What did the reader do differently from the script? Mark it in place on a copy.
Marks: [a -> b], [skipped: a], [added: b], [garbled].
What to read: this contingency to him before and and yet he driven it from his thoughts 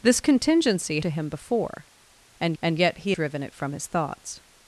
this contingency to him before and and yet he driven it from his thoughts